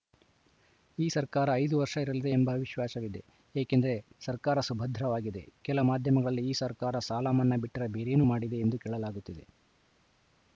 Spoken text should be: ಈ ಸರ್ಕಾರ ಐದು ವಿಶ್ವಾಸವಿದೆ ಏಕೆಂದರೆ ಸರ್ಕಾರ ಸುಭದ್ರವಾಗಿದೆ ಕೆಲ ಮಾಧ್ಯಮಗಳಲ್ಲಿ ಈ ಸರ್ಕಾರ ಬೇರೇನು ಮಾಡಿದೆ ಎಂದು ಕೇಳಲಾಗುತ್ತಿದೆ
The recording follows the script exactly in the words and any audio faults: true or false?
false